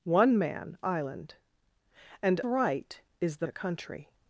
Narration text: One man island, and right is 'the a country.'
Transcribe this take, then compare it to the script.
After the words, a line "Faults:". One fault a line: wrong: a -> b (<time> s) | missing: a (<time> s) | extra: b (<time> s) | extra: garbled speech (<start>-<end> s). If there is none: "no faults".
One man island, and right is 'the a country.'
Faults:
no faults